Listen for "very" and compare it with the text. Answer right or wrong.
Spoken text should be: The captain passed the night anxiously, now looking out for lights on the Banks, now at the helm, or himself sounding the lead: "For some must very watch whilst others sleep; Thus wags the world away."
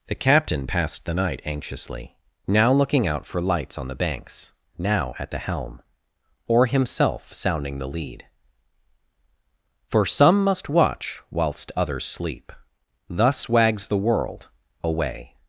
wrong